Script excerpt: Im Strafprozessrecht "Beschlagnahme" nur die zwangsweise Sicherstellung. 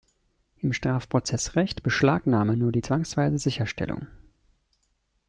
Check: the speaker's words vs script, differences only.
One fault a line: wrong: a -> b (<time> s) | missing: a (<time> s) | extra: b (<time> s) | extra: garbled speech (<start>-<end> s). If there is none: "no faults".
no faults